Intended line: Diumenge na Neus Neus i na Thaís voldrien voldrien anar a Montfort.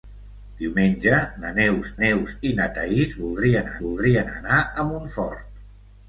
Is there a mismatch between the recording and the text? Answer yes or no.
no